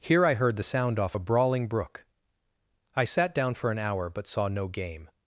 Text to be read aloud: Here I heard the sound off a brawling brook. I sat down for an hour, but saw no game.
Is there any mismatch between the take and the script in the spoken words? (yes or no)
no